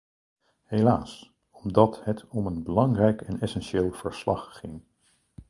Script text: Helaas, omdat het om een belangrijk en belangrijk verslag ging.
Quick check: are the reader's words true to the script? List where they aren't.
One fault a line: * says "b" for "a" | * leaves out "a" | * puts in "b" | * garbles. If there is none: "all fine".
* says "essentieel" for "belangrijk"